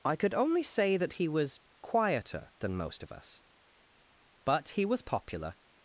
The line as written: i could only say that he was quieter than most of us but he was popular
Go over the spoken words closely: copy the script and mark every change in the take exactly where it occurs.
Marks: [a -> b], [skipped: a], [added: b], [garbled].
i could only say that he was quieter than most of us but he was popular